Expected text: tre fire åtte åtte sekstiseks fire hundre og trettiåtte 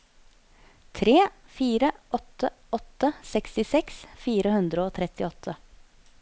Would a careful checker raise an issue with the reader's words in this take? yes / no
no